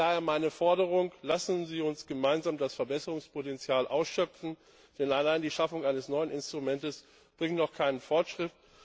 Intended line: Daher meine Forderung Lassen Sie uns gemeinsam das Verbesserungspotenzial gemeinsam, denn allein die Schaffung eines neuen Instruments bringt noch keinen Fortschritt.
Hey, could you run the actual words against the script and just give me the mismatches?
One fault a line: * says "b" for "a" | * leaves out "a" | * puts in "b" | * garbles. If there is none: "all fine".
* says "ausschöpfen" for "gemeinsam"